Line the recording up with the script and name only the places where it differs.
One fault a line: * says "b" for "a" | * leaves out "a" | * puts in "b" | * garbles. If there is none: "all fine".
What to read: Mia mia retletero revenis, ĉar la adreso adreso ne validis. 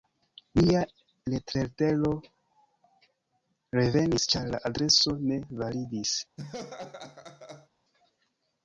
* leaves out "mia"
* leaves out "adreso"